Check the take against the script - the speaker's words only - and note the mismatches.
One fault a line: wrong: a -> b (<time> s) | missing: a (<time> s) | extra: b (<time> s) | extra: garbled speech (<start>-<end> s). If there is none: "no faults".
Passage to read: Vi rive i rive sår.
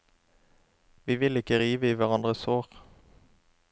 extra: vil ikke (1.1 s)
wrong: rive -> hverandres (2.0 s)